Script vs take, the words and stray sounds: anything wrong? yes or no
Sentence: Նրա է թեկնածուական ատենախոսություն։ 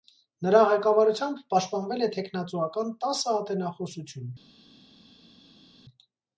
yes